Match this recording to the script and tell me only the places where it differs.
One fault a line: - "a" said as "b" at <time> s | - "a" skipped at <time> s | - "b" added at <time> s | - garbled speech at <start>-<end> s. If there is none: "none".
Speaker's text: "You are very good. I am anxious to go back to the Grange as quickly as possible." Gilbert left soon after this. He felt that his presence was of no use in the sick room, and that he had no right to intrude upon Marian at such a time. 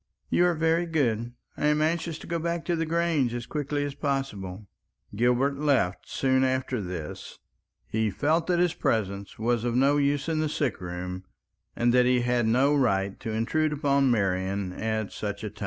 none